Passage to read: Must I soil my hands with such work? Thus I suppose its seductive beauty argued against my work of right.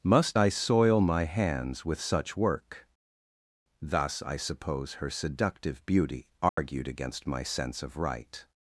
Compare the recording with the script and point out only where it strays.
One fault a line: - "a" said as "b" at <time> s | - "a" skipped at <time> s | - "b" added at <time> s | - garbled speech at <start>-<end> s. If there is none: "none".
- "its" said as "her" at 4.9 s
- "work" said as "sense" at 7.4 s